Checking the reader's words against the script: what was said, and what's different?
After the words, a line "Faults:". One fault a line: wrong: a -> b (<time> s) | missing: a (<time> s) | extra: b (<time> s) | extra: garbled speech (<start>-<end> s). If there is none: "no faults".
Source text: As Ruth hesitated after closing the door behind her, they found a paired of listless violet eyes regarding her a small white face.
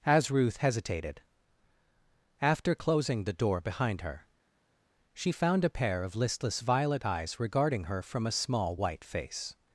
As Ruth hesitated after closing the door behind her, she found a pair of listless violet eyes regarding her from a small white face.
Faults:
wrong: they -> she (5.1 s)
wrong: paired -> pair (5.7 s)
extra: from (8.0 s)